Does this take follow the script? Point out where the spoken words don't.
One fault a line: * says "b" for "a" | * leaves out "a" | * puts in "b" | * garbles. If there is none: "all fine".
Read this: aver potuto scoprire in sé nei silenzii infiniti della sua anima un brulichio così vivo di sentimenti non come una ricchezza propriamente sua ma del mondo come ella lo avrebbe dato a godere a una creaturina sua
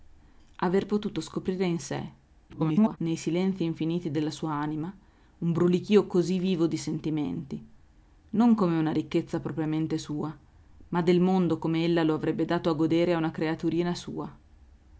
* garbles